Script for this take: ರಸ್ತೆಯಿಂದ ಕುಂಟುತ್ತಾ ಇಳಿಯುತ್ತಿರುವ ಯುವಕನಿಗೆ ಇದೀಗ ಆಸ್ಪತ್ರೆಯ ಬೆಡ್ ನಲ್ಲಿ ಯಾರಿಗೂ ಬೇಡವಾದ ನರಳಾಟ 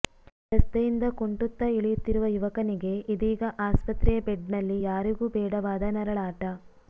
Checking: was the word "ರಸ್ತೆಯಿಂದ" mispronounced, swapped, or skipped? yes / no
no